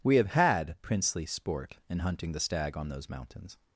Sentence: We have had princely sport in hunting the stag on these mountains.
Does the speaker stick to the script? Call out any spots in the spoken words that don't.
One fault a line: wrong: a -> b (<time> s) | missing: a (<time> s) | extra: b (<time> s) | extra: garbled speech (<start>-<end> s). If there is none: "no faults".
wrong: these -> those (2.9 s)